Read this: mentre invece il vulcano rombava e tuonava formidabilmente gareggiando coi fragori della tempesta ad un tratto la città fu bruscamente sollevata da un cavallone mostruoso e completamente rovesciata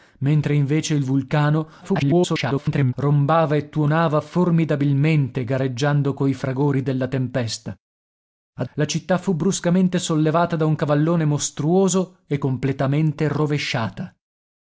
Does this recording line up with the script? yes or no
no